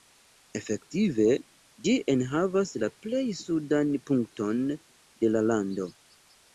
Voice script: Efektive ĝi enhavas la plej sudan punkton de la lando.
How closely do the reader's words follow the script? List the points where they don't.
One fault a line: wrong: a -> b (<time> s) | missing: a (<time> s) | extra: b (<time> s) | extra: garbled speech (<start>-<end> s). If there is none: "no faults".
no faults